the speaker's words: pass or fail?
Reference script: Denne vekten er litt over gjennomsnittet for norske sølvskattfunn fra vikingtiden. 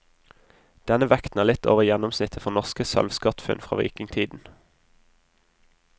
pass